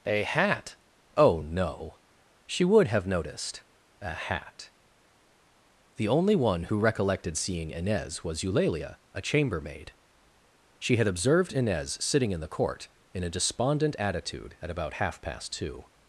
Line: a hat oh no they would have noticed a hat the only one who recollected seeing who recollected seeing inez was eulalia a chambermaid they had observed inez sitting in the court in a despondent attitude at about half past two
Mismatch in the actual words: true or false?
true